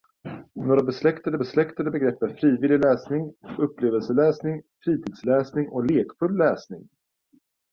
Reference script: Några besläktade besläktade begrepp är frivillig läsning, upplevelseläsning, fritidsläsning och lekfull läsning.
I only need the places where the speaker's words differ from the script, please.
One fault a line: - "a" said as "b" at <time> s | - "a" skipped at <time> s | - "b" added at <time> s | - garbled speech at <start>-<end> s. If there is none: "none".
none